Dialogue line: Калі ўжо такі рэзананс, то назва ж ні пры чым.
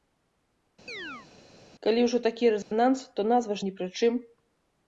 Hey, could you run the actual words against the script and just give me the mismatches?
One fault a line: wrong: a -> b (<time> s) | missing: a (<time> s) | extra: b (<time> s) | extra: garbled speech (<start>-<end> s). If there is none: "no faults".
no faults